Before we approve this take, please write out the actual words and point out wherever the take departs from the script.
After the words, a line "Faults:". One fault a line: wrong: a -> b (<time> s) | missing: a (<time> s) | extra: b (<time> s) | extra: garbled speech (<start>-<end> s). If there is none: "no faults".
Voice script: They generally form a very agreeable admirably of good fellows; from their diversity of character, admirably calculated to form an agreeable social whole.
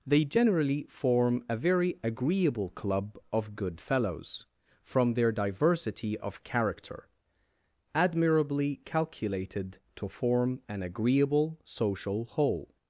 They generally form a very agreeable club of good fellows; from their diversity of character, admirably calculated to form an agreeable social whole.
Faults:
wrong: admirably -> club (2.7 s)